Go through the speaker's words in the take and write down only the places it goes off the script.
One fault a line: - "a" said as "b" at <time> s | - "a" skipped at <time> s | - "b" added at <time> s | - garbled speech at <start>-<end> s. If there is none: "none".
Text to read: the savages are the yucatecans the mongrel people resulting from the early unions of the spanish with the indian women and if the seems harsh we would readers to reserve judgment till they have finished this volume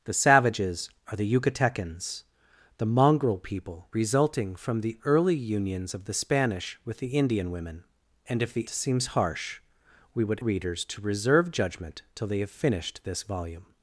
none